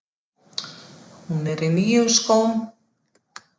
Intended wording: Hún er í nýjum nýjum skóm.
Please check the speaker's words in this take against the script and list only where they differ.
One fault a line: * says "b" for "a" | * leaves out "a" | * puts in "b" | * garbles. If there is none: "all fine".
* leaves out "nýjum"